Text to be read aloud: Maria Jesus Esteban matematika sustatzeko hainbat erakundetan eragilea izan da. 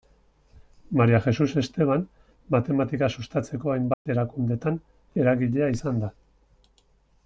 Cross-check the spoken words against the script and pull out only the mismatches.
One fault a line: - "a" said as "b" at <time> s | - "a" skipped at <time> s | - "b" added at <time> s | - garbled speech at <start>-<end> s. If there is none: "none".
none